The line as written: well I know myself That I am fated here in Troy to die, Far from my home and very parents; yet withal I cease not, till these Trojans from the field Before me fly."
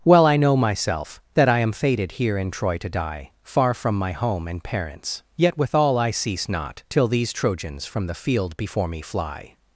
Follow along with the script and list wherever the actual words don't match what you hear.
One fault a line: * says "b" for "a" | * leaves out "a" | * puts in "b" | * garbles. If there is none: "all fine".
* leaves out "very"